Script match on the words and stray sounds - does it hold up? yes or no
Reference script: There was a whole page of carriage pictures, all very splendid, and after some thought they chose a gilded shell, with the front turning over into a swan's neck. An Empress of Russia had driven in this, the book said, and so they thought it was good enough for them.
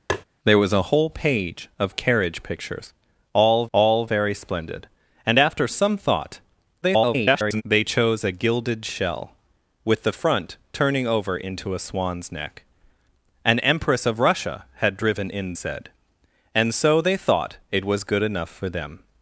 no